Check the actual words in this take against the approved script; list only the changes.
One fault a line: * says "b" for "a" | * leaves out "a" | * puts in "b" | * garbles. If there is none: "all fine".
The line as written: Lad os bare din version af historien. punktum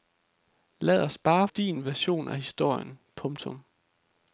all fine